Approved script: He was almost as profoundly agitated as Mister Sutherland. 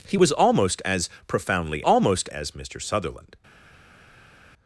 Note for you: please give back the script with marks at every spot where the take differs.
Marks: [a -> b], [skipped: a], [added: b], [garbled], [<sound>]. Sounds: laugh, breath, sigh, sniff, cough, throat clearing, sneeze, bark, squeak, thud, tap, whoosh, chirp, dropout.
He was almost as profoundly [agitated -> almost] as Mister Sutherland.